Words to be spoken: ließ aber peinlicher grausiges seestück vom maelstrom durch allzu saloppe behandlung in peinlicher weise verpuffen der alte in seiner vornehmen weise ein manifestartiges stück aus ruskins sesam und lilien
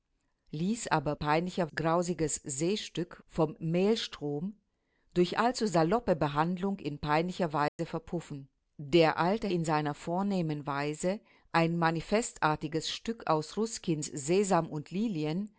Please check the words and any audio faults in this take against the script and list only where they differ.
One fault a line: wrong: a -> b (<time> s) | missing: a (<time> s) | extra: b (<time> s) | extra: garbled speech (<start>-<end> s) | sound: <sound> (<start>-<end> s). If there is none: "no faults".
sound: dropout (7.7-7.8 s)